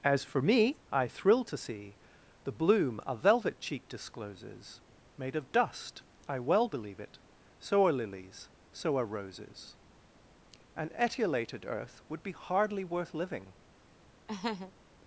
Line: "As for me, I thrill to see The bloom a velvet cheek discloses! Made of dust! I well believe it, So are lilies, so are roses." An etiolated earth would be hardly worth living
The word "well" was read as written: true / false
true